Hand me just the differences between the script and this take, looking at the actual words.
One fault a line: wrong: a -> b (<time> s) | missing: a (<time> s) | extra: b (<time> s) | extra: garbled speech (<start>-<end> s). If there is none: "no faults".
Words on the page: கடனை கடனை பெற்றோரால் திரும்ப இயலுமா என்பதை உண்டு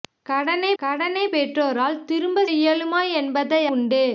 no faults